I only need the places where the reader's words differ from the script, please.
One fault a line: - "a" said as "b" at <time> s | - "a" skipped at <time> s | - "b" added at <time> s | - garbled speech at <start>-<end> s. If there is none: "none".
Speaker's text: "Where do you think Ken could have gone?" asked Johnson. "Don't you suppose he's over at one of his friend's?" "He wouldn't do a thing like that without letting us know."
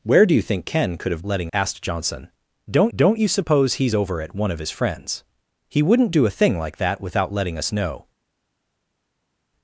- "gone" said as "letting" at 1.2 s
- "don't" added at 2.9 s